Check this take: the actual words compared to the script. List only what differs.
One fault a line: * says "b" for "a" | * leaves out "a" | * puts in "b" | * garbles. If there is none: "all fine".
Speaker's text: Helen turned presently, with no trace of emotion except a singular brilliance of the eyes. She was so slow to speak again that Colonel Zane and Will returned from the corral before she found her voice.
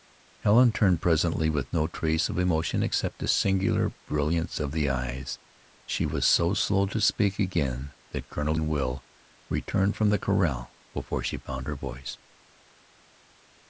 * leaves out "Zane"